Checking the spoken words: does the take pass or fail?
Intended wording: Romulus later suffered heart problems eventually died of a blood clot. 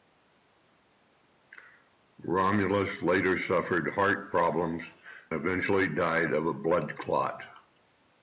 pass